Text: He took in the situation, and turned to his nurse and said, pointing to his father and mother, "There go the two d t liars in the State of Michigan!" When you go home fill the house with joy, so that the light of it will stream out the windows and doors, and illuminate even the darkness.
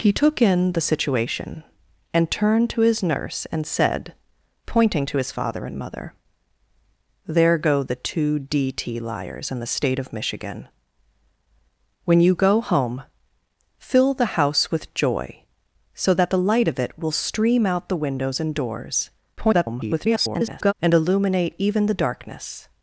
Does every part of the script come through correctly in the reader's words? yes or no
no